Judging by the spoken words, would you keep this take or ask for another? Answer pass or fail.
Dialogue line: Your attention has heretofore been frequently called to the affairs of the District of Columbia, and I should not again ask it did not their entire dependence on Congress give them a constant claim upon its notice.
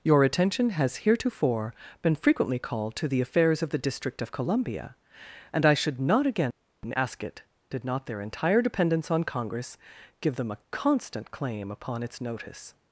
pass